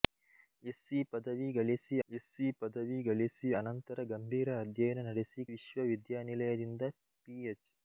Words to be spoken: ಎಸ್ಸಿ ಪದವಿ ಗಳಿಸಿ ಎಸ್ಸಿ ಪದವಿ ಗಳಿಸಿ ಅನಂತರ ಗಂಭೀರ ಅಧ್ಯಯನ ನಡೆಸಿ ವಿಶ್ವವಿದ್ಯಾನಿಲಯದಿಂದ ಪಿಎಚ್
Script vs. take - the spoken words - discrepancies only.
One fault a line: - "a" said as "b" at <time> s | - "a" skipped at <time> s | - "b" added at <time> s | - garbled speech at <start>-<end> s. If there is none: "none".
none